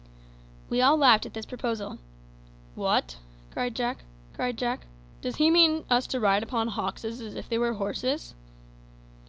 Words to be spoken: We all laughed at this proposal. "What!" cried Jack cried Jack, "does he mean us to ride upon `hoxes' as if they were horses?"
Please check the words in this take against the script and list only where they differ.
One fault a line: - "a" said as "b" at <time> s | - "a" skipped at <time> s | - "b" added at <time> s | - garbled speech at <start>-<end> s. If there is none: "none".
none